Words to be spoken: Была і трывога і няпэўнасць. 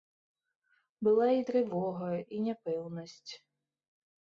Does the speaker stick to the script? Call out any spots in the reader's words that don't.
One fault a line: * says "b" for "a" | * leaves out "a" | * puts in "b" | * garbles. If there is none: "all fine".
all fine